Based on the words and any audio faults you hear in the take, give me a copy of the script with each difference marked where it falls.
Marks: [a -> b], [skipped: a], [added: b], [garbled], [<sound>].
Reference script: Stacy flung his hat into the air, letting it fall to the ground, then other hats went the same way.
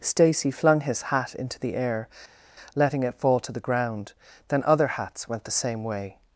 Stacy flung his hat into the air, letting it fall to the ground, then other hats went the same way.